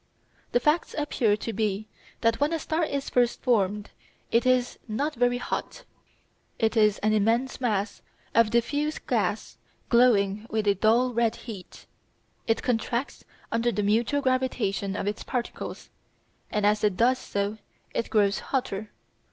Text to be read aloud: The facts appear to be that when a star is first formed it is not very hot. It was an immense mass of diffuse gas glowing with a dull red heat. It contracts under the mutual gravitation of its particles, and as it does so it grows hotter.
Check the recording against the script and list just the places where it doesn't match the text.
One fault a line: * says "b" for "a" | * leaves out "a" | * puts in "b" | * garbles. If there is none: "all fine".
* says "is" for "was"